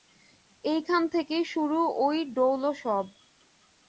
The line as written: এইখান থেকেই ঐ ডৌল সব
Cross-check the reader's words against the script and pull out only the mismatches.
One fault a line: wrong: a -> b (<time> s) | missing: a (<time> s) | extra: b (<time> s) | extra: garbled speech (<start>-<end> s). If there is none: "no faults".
extra: শুরু (1.4 s)